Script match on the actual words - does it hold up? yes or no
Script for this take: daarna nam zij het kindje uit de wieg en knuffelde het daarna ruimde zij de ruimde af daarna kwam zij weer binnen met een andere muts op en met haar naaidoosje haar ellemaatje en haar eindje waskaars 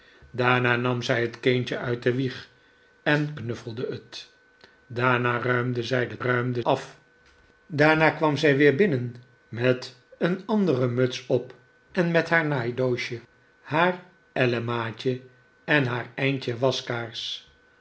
yes